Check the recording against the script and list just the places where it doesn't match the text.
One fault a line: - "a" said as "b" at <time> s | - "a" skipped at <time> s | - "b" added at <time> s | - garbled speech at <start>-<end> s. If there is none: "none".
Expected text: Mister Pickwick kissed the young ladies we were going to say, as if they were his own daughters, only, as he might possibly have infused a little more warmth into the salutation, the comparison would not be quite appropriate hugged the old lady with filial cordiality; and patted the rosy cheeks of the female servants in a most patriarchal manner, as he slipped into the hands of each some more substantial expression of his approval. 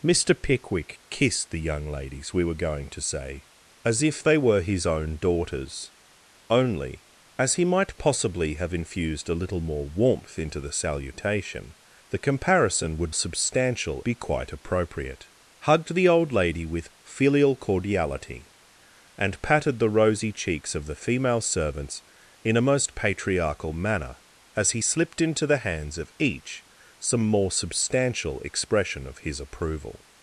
- "not" said as "substantial" at 13.1 s